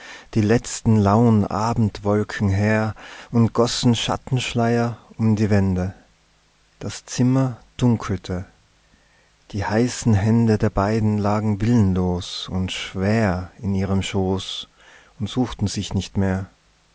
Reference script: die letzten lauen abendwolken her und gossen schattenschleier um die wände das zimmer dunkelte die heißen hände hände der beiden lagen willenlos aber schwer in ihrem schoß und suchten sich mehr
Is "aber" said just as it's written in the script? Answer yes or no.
no